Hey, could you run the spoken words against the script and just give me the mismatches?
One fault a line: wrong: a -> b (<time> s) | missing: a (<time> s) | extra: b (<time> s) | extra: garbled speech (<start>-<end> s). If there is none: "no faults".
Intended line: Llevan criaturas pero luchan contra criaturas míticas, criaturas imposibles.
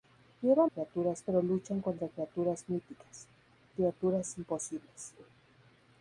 no faults